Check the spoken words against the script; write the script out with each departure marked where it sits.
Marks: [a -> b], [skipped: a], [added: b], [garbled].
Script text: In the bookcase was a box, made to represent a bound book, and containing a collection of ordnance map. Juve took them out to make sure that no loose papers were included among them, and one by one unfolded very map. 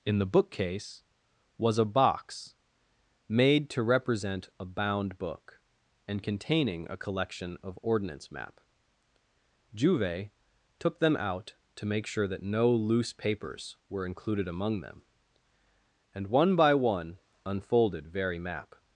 In the bookcase was a box, made to represent a bound book, and containing a collection of ordnance map. Juve took them out to make sure that no loose papers were included among them, and one by one unfolded very map.